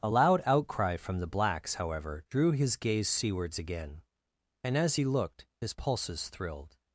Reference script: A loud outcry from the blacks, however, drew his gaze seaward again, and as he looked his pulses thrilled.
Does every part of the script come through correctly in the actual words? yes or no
no